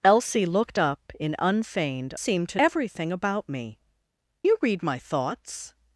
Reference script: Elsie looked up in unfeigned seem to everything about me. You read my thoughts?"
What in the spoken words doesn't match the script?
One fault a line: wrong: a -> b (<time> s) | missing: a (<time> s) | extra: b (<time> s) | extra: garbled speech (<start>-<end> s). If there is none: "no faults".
no faults